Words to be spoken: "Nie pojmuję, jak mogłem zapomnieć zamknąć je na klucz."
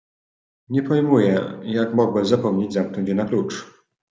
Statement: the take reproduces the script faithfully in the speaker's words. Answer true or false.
true